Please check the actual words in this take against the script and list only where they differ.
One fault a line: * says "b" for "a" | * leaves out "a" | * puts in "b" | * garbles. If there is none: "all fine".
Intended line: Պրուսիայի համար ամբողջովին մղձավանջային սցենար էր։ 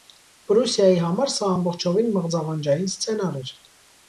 * puts in "սա"